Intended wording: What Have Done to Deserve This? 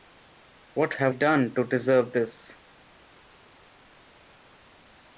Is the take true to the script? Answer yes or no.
yes